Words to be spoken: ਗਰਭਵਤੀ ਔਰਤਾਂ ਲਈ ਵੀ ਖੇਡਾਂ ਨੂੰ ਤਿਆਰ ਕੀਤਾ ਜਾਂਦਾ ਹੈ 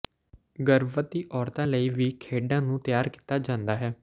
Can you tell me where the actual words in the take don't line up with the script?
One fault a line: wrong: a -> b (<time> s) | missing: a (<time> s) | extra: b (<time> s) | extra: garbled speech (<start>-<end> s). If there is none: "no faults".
no faults